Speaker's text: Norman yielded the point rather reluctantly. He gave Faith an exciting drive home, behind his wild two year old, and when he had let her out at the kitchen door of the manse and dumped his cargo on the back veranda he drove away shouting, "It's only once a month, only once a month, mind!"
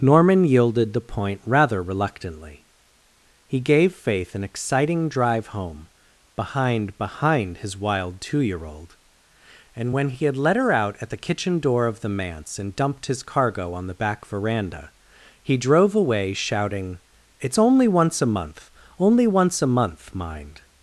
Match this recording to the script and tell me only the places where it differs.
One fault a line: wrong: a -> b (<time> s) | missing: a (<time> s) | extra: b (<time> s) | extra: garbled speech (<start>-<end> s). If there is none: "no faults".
extra: behind (7.0 s)